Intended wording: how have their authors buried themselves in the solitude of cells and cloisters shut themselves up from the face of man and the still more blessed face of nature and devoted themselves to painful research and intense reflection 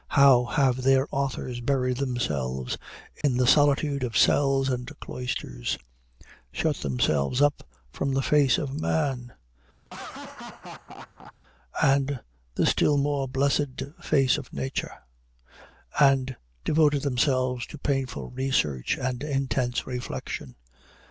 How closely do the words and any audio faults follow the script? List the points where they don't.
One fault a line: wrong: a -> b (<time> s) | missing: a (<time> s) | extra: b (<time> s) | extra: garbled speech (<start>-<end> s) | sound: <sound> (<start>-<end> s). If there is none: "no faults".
sound: dropout (3.2-3.2 s)
sound: laugh (9.8-11.3 s)